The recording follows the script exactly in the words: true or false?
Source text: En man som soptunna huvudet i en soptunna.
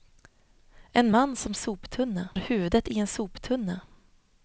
true